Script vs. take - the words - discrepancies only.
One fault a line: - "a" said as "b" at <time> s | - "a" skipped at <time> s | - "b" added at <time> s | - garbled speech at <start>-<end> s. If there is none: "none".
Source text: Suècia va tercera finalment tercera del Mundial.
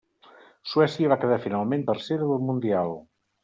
- "tercera" said as "quedar" at 1.2 s